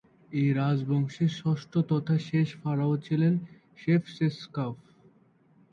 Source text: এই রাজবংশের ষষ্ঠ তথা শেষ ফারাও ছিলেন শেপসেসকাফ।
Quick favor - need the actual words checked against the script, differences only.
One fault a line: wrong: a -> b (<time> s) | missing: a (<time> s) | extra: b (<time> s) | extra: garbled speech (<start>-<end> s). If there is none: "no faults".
no faults